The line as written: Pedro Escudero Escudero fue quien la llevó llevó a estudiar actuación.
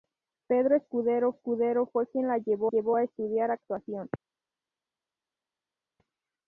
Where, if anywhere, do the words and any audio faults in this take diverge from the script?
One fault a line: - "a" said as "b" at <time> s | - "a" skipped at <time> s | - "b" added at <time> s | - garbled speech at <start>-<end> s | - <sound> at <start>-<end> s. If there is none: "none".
none